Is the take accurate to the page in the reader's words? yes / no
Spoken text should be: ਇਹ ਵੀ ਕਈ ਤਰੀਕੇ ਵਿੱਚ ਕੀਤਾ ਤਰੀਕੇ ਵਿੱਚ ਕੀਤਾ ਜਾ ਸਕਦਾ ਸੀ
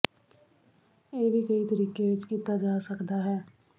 no